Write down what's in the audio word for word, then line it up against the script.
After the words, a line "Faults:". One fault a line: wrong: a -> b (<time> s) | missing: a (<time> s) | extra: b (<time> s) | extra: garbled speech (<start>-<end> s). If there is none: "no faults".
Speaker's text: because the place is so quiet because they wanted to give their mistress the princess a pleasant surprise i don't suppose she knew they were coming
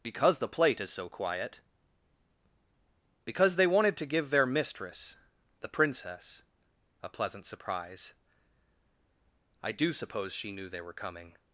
because the plate is so quiet because they wanted to give their mistress the princess a pleasant surprise i do suppose she knew they were coming
Faults:
wrong: place -> plate (0.5 s)
wrong: don't -> do (9.7 s)